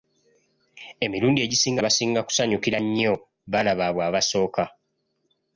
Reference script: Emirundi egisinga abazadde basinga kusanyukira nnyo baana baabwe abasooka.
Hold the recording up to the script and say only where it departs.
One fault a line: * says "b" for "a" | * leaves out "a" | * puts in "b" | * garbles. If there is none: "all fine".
* leaves out "abazadde"